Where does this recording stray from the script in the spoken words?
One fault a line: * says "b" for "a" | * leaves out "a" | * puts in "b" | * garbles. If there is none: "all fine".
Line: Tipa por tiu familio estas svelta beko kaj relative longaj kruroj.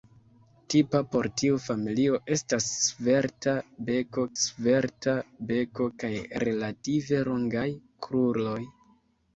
* puts in "svelta beko"